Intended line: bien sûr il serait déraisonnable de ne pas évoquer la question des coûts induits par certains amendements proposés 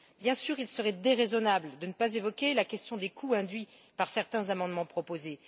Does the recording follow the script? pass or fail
pass